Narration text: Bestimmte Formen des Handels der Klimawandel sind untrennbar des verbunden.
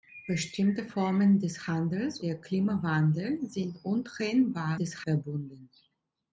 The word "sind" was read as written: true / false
true